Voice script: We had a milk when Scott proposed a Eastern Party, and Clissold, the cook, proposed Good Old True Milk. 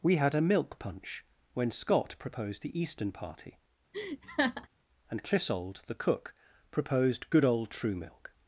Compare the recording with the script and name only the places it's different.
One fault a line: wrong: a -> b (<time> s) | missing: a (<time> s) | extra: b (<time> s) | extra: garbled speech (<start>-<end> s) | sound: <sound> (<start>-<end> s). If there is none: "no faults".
extra: punch (0.8 s)
wrong: a -> the (2.6 s)
sound: laugh (3.9-4.7 s)